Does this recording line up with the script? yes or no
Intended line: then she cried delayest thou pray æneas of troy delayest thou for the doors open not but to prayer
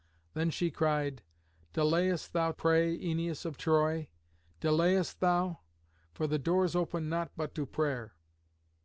yes